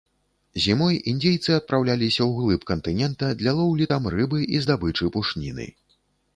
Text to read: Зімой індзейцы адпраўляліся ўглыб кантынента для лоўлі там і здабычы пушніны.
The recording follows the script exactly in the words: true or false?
false